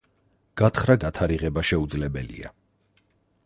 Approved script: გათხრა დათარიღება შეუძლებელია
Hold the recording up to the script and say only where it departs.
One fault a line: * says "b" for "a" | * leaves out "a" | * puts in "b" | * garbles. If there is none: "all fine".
all fine